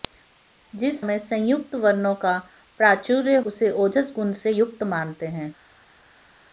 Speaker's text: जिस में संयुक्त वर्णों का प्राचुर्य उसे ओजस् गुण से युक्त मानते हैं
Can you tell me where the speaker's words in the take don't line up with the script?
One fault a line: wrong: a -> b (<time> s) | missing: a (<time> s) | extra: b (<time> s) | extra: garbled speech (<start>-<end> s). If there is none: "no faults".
no faults